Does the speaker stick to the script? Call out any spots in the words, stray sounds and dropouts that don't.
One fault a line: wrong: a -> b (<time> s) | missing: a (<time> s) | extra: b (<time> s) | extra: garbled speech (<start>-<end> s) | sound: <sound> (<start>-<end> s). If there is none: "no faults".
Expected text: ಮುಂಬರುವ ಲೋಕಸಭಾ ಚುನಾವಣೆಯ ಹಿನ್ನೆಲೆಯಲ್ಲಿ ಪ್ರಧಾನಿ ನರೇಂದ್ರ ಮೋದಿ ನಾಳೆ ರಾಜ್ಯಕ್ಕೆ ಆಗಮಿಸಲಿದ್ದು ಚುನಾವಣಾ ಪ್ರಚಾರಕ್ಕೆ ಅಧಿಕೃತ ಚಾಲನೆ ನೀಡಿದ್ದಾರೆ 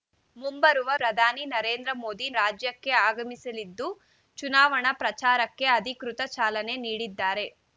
missing: ಲೋಕಸಭಾ ಚುನಾವಣೆಯ ಹಿನ್ನೆಲೆಯಲ್ಲಿ (0.9 s)
missing: ನಾಳೆ (2.3 s)